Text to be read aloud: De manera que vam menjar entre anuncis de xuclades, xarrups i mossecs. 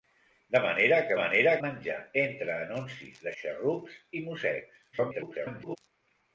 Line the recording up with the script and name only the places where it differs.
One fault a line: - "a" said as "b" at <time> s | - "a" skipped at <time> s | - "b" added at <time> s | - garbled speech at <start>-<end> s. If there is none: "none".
- "vam" said as "manera" at 1.2 s
- "xuclades" skipped at 3.3 s
- garbled speech at 4.9-5.8 s